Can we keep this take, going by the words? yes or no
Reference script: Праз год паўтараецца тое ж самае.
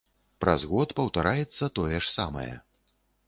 yes